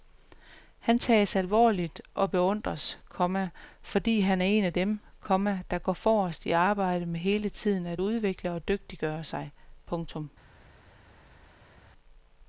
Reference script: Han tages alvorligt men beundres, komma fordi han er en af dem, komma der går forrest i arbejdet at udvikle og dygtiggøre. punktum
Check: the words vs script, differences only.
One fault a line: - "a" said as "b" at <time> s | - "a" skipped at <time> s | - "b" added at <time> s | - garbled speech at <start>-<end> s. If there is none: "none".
- "men" said as "og" at 2.1 s
- "med hele tiden" added at 7.1 s
- "sig" added at 9.2 s